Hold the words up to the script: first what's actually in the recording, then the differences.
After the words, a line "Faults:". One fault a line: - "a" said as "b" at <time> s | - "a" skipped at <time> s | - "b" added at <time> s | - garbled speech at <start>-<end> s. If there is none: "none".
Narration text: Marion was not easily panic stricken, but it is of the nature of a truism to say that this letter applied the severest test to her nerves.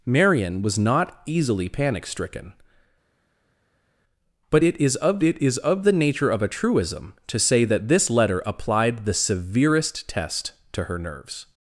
Marion was not easily panic stricken, but it is of it is of the nature of a truism to say that this letter applied the severest test to her nerves.
Faults:
- "it is of" added at 5.2 s